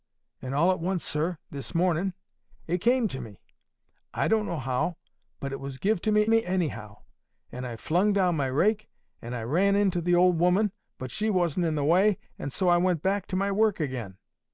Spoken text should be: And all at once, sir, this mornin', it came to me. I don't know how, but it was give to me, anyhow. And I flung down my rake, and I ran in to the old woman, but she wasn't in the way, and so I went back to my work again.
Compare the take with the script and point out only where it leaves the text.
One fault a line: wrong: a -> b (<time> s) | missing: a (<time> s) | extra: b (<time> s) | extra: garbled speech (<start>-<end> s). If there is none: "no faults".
extra: me (6.3 s)